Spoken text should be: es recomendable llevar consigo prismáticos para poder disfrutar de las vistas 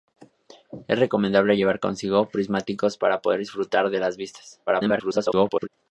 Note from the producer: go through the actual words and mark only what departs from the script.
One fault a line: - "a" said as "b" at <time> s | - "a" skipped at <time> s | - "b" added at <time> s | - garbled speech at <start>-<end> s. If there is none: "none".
- garbled speech at 4.7-5.7 s